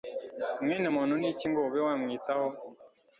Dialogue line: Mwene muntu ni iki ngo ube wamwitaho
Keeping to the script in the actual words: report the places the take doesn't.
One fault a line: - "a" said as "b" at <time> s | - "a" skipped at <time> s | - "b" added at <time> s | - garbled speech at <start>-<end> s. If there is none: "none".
none